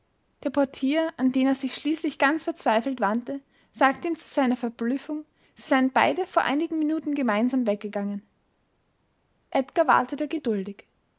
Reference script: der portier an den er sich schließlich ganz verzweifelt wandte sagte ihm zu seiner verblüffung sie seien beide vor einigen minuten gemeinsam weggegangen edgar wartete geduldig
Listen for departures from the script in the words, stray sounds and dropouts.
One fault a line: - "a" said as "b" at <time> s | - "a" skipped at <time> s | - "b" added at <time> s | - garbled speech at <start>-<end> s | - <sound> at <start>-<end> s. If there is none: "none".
none